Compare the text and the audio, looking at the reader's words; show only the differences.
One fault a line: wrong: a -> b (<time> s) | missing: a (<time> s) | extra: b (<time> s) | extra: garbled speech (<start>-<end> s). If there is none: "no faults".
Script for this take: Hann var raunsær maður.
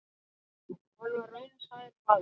no faults